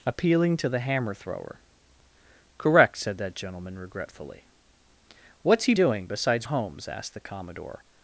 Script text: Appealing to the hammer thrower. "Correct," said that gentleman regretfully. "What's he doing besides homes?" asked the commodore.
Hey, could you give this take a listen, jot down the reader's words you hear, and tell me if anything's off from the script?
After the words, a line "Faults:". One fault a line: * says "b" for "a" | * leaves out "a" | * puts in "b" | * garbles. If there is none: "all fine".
Appealing to the hammer thrower. "Correct," said that gentleman regretfully. "What's he doing besides homes?" asked the commodore.
Faults:
all fine